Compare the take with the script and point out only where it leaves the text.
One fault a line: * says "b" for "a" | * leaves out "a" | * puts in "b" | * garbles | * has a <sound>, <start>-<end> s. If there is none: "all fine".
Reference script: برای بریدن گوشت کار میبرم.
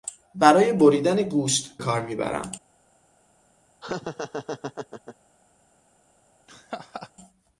* has a laugh, 3.8-5.2 s
* has a laugh, 6.5-7.1 s